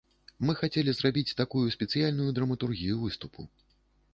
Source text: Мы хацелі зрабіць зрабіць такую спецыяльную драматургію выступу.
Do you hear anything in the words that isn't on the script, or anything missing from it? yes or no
yes